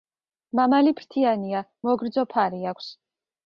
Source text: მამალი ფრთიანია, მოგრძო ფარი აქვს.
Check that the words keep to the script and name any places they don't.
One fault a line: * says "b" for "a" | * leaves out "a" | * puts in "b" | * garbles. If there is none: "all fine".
all fine